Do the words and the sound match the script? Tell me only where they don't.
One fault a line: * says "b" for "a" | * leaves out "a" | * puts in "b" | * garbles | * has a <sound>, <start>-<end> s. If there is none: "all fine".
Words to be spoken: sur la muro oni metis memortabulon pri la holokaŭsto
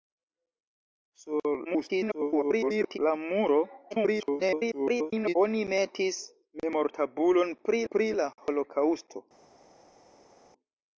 * garbles
* garbles
* puts in "pri"